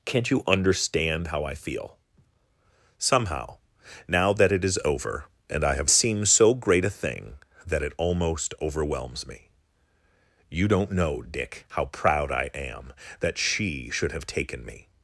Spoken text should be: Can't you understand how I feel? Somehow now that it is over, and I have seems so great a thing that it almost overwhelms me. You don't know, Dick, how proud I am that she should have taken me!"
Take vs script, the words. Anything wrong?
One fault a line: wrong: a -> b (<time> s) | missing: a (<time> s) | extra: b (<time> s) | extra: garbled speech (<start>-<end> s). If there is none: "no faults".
no faults